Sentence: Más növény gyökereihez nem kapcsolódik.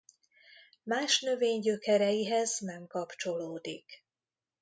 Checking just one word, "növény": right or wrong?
right